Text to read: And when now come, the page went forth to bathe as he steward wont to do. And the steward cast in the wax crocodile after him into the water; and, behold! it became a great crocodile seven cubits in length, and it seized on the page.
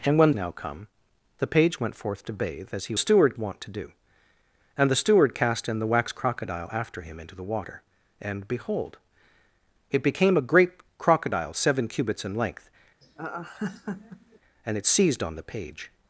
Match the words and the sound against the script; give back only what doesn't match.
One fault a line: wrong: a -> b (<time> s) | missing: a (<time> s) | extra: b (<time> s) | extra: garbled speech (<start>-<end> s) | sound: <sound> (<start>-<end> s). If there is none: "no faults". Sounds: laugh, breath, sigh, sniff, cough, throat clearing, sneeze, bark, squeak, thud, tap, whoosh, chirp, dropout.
sound: laugh (13.0-14.4 s)